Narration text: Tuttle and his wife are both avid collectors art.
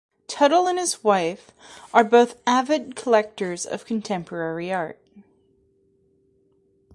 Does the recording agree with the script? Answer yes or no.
no